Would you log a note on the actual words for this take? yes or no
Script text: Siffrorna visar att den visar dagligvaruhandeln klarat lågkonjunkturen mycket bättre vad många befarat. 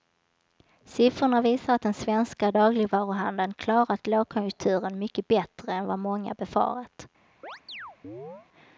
yes